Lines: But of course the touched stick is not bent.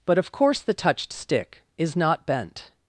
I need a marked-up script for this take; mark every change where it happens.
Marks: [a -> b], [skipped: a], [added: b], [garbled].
But of course the touched stick is not bent.